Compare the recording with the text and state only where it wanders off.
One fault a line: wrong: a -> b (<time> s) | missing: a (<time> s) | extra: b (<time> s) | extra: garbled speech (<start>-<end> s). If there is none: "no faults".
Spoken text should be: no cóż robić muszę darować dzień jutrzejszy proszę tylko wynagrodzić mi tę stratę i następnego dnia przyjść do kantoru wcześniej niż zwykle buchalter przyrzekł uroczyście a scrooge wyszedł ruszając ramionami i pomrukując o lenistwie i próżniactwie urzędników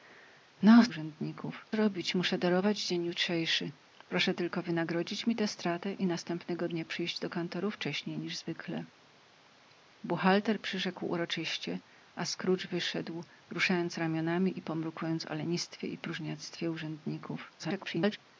wrong: cóż -> urzędników (0.9 s)
extra: garbled speech (17.6-18.2 s)